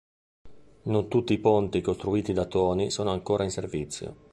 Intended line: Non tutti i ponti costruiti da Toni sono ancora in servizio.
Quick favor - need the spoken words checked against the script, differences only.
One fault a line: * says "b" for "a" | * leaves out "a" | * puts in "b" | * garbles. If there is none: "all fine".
all fine